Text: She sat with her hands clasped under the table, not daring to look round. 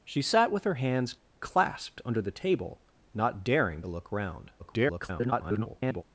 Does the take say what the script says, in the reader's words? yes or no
no